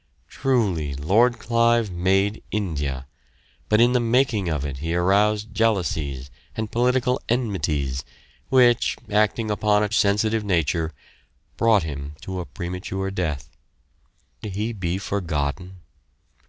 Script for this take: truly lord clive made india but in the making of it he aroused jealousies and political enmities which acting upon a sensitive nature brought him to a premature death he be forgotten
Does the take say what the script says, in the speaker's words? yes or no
yes